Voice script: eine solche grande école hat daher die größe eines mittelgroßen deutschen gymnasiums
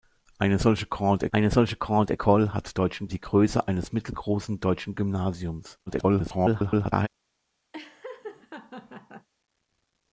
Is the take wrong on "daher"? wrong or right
wrong